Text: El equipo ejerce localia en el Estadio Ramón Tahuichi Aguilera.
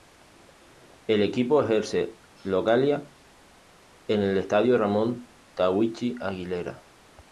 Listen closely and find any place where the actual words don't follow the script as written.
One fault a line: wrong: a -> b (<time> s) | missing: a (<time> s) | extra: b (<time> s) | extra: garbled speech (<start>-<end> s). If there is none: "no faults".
no faults